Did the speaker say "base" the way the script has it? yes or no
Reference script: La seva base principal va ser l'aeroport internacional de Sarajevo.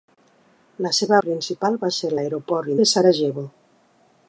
no